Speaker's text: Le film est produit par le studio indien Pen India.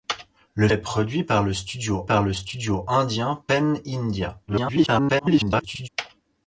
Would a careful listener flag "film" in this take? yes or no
yes